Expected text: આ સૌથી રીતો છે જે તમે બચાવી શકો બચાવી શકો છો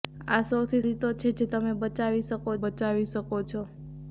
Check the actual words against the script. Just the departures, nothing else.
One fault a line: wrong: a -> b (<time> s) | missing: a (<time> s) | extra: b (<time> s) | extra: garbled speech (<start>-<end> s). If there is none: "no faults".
no faults